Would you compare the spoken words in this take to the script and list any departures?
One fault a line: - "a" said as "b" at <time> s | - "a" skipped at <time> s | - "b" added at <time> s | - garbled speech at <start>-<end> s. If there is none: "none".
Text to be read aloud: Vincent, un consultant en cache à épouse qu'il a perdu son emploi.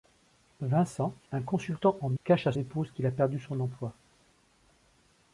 none